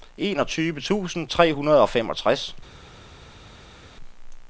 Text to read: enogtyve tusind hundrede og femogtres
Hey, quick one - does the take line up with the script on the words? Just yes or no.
no